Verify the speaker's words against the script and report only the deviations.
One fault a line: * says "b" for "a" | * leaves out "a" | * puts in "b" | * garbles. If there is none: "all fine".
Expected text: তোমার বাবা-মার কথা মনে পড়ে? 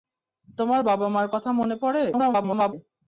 * garbles